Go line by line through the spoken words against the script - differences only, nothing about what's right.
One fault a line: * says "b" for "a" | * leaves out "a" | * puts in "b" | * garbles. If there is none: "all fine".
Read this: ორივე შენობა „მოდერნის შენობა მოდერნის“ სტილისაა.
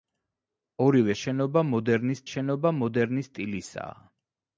all fine